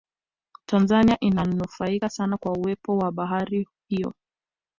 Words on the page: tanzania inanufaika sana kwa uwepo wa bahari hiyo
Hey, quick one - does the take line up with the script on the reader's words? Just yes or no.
yes